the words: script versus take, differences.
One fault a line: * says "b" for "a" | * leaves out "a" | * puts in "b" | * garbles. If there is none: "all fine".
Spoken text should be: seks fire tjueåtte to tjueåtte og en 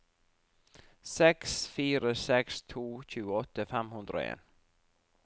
* says "seks" for "tjueåtte"
* puts in "fem hundre"